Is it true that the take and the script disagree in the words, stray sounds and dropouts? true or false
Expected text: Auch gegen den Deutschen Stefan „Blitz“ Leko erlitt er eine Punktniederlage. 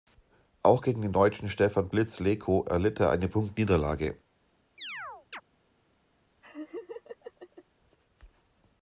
true